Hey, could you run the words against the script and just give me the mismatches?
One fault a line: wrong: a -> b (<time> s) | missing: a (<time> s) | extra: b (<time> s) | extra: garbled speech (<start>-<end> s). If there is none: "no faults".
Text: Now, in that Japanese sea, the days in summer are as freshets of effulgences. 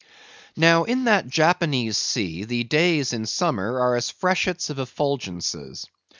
no faults